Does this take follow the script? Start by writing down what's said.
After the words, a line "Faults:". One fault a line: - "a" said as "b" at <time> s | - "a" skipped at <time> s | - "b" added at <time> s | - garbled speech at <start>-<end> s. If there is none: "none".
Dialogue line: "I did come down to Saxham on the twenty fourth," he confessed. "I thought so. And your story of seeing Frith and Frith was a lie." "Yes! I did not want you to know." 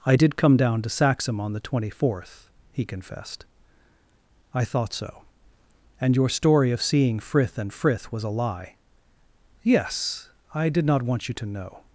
"I did come down to Saxham on the twenty fourth," he confessed. "I thought so. And your story of seeing Frith and Frith was a lie." "Yes! I did not want you to know."
Faults:
none